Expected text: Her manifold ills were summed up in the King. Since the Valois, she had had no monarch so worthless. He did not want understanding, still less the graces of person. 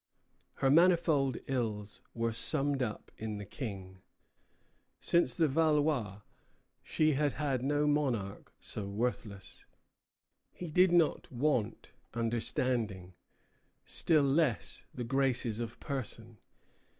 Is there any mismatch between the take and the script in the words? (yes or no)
no